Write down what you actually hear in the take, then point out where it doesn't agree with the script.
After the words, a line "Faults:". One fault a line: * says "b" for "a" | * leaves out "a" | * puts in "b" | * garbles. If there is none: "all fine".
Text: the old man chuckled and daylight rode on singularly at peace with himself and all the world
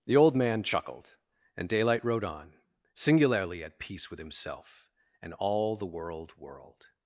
the old man chuckled and daylight rode on singularly at peace with himself and all the world world
Faults:
* puts in "world"